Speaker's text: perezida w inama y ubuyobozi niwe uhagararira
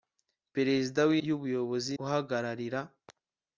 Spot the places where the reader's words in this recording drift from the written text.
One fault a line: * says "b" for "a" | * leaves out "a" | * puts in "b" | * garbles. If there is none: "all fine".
* leaves out "inama"
* leaves out "niwe"